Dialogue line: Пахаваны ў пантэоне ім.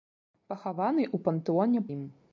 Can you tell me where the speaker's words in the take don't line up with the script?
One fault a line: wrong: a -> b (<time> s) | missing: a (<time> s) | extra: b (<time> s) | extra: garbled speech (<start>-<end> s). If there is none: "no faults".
no faults